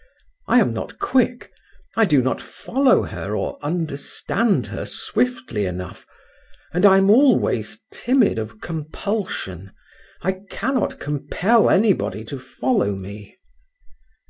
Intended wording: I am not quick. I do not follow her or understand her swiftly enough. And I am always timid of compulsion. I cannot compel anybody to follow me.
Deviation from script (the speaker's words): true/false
false